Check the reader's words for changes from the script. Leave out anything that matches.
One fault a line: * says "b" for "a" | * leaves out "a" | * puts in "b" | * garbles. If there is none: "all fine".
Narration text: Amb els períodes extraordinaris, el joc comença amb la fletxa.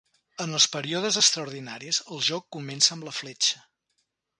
* says "En" for "Amb"